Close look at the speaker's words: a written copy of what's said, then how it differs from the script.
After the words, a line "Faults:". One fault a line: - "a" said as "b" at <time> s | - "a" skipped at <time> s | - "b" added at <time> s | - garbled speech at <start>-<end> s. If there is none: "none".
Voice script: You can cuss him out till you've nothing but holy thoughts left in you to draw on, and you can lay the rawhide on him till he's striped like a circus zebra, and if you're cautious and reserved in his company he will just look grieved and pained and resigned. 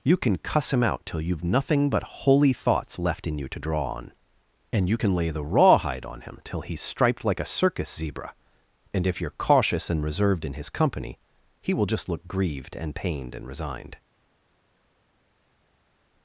You can cuss him out till you've nothing but holy thoughts left in you to draw on, and you can lay the rawhide on him till he's striped like a circus zebra, and if you're cautious and reserved in his company he will just look grieved and pained and resigned.
Faults:
none